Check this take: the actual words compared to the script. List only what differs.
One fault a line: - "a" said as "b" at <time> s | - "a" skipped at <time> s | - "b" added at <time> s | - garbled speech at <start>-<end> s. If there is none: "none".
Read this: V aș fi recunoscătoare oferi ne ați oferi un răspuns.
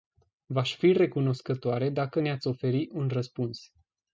- "oferi" said as "dacă" at 1.9 s